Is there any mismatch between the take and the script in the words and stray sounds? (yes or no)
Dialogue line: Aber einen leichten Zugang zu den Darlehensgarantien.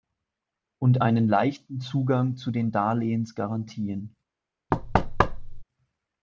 yes